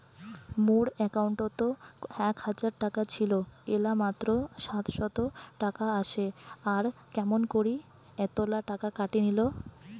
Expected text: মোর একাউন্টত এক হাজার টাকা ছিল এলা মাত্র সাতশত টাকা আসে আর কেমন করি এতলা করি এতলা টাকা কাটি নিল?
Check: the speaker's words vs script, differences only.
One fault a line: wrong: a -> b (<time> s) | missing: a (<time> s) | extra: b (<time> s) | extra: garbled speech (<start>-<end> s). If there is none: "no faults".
missing: করি এতলা (8.6 s)